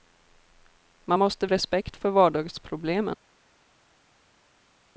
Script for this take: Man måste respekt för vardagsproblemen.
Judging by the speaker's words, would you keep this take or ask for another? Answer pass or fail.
pass